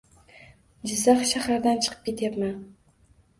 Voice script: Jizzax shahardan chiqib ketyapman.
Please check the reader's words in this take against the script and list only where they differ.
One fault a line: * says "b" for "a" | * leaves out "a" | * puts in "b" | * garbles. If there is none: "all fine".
all fine